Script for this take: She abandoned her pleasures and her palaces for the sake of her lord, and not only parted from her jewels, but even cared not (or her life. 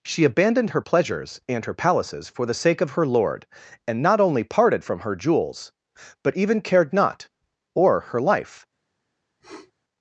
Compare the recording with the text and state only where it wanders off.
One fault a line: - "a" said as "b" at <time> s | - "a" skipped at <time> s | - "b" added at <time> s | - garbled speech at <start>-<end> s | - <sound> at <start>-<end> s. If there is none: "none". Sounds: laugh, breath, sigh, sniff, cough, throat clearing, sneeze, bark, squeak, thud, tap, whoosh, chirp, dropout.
- sniff at 9.4-9.7 s